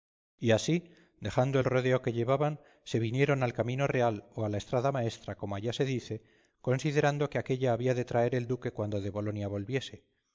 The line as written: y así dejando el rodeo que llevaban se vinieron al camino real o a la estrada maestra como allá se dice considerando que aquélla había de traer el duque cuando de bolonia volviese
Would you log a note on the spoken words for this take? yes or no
no